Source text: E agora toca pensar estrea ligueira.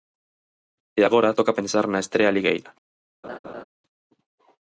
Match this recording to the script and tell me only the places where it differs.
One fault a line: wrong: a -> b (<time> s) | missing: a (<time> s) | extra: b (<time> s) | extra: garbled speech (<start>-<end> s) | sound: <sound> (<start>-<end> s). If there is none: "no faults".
extra: na (1.9 s)
sound: laugh (3.2-3.6 s)